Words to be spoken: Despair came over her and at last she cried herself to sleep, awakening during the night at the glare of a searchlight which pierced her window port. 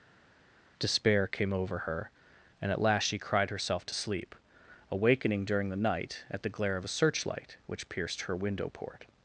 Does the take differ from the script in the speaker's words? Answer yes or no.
no